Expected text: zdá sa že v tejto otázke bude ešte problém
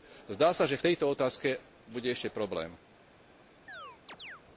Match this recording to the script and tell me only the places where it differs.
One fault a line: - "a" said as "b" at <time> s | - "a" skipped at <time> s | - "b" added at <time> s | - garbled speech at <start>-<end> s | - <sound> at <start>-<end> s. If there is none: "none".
- chirp at 3.7-4.4 s